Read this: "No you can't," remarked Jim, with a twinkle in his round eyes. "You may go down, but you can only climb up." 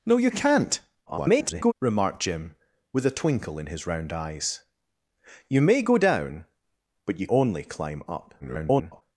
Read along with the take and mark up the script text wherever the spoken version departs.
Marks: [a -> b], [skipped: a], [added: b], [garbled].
"No you can't," [garbled] remarked Jim, with a twinkle in his round eyes. "You may go down, but you [skipped: can] only climb up." [garbled]